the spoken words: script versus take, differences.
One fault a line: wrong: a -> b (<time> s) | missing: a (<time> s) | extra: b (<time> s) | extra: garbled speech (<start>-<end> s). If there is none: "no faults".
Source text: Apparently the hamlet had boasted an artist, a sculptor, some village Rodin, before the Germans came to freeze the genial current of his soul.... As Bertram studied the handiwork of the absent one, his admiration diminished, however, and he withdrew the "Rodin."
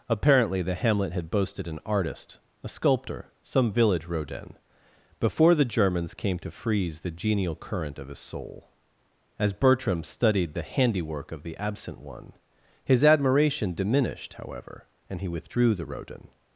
no faults